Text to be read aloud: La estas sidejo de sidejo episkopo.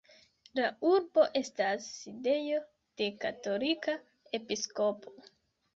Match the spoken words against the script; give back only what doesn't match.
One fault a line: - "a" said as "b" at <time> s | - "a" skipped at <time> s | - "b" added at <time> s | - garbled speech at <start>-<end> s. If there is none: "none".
- "urbo" added at 0.9 s
- "sidejo" said as "katolika" at 3.3 s